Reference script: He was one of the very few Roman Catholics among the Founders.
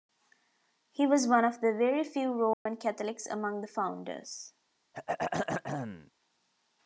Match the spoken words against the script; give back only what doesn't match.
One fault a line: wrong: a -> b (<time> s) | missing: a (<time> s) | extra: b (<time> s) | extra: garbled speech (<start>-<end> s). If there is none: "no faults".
no faults